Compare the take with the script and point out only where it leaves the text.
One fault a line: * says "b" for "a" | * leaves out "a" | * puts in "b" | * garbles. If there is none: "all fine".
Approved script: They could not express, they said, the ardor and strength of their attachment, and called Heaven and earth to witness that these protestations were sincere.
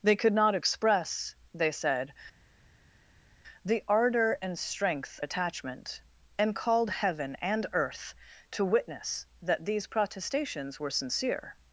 * leaves out "of their"